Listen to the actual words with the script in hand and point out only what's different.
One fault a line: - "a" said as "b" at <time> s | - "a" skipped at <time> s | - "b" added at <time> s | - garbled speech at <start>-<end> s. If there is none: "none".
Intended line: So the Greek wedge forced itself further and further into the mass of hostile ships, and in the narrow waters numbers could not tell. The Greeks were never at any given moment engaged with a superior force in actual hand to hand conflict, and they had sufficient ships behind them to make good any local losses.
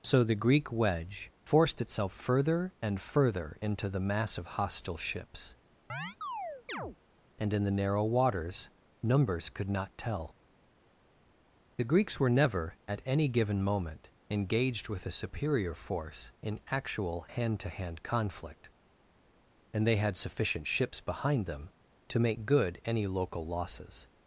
none